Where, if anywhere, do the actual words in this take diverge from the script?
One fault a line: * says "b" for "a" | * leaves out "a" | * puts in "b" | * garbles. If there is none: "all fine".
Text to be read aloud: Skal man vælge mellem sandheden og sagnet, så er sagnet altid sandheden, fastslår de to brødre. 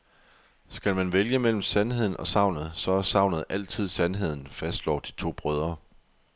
all fine